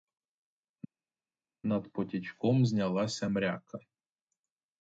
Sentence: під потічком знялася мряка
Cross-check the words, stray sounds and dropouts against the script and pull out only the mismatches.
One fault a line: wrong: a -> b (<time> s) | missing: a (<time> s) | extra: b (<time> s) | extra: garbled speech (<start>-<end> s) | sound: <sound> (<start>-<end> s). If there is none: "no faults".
wrong: під -> над (1.7 s)